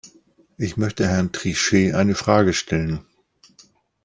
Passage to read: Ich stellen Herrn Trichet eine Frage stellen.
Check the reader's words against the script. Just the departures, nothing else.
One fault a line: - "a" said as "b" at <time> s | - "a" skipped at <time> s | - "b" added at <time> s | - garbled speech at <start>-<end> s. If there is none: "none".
- "stellen" said as "möchte" at 0.8 s